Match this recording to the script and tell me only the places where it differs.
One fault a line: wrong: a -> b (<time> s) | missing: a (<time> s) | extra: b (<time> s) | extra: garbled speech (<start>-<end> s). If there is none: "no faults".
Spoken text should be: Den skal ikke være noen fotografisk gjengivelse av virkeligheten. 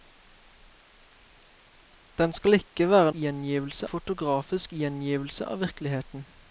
wrong: noen -> gjengivelse (3.2 s)